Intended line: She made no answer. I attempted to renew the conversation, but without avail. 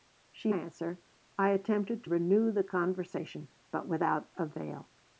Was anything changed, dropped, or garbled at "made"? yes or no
yes